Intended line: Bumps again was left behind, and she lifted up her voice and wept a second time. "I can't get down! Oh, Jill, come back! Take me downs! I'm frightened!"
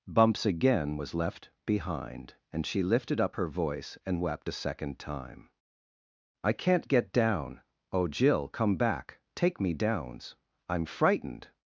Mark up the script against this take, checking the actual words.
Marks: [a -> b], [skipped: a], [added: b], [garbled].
Bumps again was left behind, and she lifted up her voice and wept a second time. "I can't get down! Oh, Jill, come back! Take me downs! I'm frightened!"